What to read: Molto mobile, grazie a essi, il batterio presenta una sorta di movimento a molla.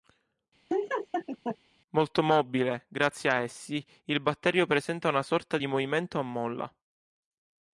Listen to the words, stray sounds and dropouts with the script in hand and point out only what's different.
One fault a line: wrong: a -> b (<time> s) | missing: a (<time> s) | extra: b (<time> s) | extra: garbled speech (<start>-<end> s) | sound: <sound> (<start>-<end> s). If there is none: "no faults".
sound: laugh (0.7-1.6 s)